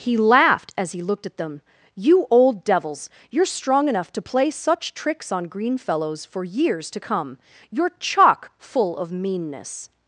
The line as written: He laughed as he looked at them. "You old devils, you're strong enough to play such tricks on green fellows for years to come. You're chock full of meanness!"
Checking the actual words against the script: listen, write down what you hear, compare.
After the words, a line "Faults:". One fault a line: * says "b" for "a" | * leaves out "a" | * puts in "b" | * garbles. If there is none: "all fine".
He laughed as he looked at them. "You old devils, you're strong enough to play such tricks on green fellows for years to come. You're chock full of meanness!"
Faults:
all fine